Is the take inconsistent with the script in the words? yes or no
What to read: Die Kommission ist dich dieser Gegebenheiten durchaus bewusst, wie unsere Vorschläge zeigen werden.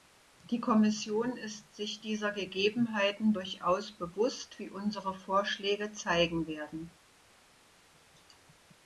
yes